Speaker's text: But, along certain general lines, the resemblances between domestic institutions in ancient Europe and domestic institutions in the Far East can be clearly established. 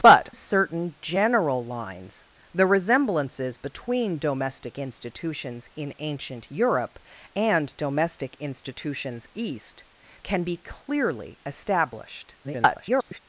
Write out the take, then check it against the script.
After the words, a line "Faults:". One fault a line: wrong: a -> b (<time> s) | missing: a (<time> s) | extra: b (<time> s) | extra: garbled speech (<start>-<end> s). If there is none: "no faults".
But, certain general lines, the resemblances between domestic institutions in ancient Europe and domestic institutions East can be clearly established. [garbled]
Faults:
missing: along (0.3 s)
missing: in the Far (9.3 s)
extra: garbled speech (12.4-13.2 s)